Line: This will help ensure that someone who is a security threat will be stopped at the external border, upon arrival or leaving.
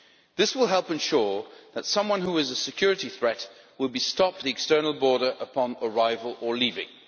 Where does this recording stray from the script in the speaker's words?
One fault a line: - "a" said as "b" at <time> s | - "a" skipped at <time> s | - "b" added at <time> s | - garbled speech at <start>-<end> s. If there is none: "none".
- "at" skipped at 4.4 s